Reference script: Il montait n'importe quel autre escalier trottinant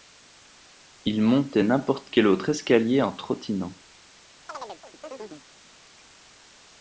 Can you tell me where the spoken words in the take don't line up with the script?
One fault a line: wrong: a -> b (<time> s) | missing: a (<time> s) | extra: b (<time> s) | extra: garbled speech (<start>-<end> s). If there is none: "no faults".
extra: en (3.0 s)